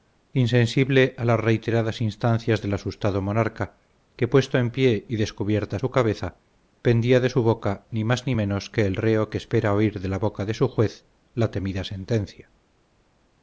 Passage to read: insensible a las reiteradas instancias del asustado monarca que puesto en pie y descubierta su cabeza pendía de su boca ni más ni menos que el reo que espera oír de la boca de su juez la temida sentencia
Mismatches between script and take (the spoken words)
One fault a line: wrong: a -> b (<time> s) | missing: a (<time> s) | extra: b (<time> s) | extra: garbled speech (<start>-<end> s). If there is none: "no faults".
no faults